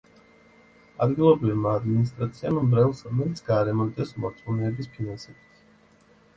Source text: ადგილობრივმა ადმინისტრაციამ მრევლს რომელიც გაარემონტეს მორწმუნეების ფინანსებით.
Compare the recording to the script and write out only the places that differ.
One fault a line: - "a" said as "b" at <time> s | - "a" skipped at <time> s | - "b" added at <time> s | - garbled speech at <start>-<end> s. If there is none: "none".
none